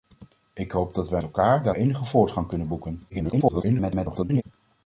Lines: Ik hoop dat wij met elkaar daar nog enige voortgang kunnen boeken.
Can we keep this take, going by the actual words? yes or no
no